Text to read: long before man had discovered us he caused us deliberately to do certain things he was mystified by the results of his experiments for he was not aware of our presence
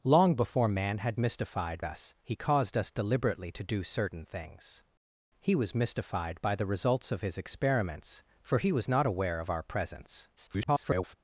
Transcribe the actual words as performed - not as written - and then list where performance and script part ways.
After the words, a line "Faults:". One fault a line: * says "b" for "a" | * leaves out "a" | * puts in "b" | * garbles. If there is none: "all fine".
long before man had mystified us he caused us deliberately to do certain things he was mystified by the results of his experiments for he was not aware of our presence [garbled]
Faults:
* says "mystified" for "discovered"
* garbles